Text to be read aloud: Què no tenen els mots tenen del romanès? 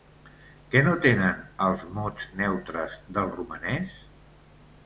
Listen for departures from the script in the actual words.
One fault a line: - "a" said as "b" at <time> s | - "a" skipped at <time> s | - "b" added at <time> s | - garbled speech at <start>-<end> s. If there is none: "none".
- "tenen" said as "neutres" at 2.4 s